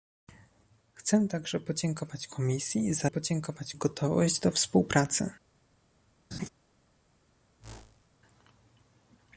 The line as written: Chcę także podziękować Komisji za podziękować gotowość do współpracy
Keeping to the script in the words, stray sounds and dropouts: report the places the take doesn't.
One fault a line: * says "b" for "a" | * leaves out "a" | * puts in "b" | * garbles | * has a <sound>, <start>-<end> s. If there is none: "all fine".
* has a laugh, 6.3-6.5 s
* has a whoosh, 7.6-8.1 s